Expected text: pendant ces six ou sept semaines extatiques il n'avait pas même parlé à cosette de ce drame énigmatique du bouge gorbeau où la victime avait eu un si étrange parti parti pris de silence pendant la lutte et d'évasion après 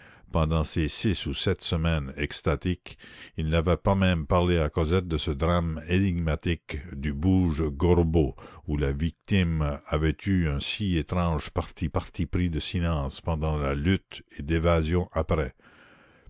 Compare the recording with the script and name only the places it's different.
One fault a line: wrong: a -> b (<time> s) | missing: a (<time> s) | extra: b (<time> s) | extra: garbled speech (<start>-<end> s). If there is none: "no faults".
no faults